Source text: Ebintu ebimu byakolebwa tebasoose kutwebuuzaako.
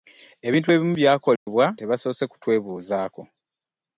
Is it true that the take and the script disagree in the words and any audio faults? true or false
true